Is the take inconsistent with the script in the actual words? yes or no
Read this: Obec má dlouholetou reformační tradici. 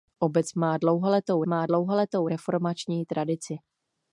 yes